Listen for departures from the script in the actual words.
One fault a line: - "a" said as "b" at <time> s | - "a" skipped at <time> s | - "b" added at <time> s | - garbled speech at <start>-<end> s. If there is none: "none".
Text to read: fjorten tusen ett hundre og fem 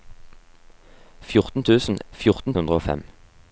- "ett" said as "fjorten" at 2.1 s